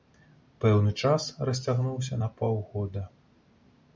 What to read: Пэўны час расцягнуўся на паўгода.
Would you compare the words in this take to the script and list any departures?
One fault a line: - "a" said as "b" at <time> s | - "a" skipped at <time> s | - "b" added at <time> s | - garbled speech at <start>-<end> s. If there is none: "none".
none